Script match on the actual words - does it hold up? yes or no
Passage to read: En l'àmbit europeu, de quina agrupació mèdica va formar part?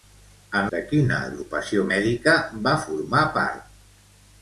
no